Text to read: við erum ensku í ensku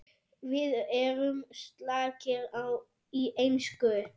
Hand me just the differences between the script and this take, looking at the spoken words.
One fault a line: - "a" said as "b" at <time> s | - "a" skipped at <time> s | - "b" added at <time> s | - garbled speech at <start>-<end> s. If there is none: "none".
- "ensku" said as "slakir" at 1.6 s